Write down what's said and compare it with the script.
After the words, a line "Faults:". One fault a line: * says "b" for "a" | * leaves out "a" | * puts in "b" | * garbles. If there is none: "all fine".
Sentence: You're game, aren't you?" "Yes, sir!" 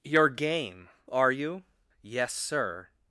You're game, are you?" "Yes, sir!"
Faults:
* says "are" for "aren't"